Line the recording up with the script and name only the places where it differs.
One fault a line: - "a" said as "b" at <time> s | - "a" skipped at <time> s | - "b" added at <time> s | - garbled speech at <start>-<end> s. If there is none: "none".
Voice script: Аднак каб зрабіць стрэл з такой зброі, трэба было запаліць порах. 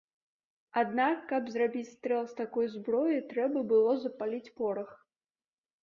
none